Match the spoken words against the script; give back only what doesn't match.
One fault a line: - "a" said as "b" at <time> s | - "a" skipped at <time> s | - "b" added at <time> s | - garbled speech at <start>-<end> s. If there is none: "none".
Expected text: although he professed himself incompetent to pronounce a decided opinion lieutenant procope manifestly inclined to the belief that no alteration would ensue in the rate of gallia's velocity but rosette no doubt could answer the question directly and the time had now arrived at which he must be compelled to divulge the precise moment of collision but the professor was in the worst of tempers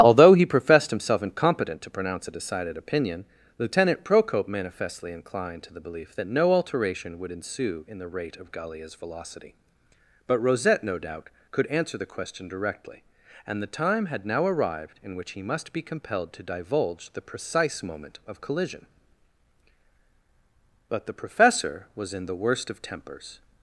- "at" said as "in" at 15.0 s